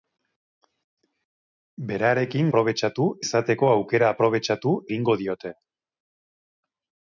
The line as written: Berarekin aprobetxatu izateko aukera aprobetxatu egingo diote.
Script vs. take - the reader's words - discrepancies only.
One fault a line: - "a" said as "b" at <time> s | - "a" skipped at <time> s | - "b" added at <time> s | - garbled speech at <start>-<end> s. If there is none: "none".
none